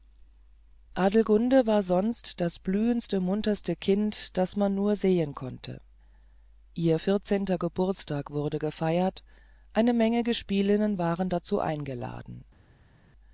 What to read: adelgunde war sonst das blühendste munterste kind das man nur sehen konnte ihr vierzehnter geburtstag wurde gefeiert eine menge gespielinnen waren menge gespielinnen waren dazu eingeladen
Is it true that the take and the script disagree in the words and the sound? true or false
true